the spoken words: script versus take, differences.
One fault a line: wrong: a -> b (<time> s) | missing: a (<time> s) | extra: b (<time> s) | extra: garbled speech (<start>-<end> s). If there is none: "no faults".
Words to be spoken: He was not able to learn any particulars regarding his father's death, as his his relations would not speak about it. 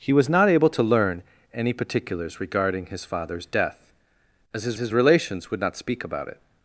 no faults